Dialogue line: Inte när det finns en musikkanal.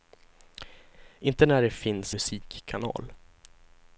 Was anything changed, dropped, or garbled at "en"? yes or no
yes